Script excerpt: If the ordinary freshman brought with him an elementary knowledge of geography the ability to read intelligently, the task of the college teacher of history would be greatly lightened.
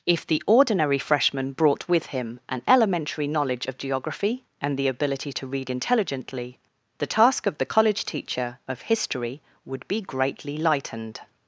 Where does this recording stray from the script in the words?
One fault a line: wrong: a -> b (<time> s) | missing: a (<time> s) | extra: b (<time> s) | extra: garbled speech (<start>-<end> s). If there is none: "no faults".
extra: and (4.6 s)